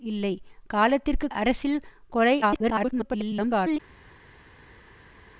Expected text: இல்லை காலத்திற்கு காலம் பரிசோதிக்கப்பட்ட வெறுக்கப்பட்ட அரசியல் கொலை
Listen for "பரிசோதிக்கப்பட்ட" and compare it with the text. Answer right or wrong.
wrong